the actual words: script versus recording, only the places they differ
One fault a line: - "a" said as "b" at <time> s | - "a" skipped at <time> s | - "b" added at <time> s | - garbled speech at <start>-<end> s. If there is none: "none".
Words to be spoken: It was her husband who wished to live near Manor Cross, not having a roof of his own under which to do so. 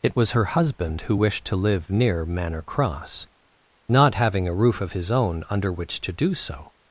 none